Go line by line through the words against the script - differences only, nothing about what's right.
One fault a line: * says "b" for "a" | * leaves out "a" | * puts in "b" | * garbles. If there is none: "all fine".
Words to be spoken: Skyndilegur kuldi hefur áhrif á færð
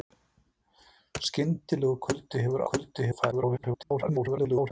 * says "kuldi" for "áhrif"
* garbles